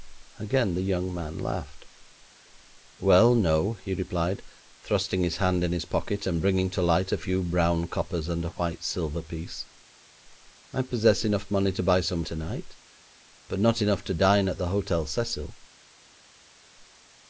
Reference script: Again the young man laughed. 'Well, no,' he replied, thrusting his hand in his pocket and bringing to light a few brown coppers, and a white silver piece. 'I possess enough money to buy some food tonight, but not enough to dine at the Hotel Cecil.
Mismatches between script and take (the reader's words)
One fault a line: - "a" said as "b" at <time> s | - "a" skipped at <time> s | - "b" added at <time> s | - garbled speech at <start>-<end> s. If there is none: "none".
- "food" skipped at 12.2 s